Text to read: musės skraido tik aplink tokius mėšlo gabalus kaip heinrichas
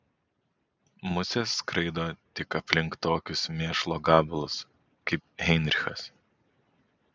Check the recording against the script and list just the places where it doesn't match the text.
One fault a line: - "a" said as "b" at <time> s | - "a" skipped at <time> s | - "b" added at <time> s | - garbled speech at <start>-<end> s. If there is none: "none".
none